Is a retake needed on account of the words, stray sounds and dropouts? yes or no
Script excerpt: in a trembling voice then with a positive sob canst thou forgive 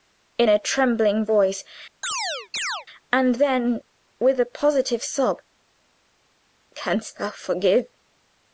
yes